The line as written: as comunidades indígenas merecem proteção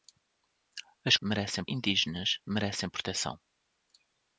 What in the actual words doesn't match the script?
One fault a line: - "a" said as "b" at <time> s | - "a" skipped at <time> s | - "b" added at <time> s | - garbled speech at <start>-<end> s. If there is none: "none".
- "comunidades" said as "merecem" at 1.2 s